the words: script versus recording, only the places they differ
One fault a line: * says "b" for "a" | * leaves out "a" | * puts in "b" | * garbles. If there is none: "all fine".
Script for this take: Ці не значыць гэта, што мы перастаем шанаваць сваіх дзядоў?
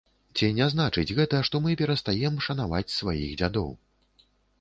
all fine